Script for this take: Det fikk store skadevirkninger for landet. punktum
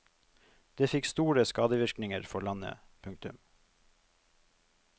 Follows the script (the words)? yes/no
yes